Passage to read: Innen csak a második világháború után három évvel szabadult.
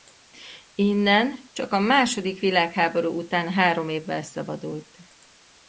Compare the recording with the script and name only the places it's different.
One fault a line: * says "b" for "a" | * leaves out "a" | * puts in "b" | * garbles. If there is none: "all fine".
all fine